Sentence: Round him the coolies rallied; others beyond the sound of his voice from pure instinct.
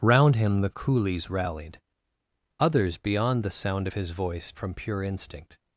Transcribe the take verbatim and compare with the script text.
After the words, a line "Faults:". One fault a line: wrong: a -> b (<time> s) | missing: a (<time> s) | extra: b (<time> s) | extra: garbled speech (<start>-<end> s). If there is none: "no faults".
Round him the coolies rallied; others beyond the sound of his voice from pure instinct.
Faults:
no faults